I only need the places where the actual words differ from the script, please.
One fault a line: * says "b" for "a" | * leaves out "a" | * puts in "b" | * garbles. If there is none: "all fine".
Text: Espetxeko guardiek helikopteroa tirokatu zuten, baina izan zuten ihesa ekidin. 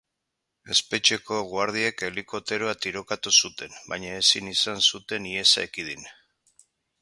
* puts in "ezin"